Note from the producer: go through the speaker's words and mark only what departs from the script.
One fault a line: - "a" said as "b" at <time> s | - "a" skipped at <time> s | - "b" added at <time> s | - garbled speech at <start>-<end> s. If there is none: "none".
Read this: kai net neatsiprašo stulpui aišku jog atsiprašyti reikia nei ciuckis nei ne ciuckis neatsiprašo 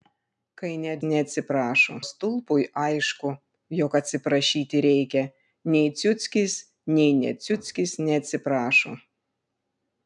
none